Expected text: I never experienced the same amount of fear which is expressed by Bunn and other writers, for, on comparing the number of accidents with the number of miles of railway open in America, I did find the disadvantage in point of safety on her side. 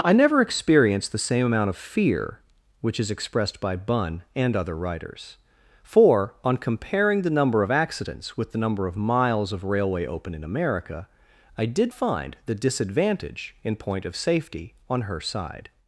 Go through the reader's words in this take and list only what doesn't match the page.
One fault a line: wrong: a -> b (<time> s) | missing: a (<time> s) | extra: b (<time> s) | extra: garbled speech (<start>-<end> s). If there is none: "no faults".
no faults